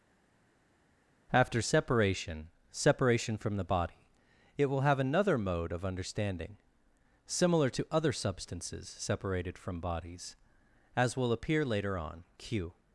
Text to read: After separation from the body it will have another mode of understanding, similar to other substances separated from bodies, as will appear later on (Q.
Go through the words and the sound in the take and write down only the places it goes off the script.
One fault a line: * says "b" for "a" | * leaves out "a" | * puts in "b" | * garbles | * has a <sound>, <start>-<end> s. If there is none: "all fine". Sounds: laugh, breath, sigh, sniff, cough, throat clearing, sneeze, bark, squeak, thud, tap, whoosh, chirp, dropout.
* puts in "separation"